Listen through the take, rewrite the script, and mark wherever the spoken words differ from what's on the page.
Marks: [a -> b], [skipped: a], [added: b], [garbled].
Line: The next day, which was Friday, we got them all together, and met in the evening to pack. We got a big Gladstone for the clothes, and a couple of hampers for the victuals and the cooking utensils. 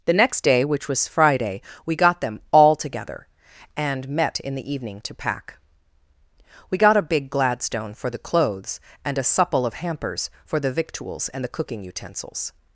The next day, which was Friday, we got them all together, and met in the evening to pack. We got a big Gladstone for the clothes, and a [couple -> supple] of hampers for the victuals and the cooking utensils.